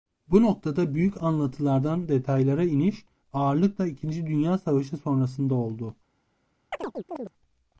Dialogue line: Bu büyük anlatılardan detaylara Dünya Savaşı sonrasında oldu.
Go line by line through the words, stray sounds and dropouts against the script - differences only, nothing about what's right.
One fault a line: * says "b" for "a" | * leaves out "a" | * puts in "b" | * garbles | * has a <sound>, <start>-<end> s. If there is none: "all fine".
* puts in "noktada"
* puts in "iniş ağırlıkla ikinci"
* has a chirp, 6.7-7.3 s